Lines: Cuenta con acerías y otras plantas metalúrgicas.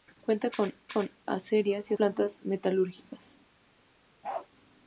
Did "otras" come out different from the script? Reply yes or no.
yes